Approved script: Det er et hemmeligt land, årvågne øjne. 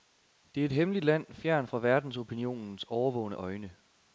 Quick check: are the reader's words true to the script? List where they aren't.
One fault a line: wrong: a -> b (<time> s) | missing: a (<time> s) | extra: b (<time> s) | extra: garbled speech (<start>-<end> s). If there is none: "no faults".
extra: fjernt fra verdensopinionens (1.3 s)